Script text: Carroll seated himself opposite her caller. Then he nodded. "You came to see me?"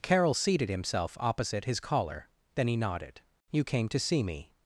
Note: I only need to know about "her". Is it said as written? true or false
false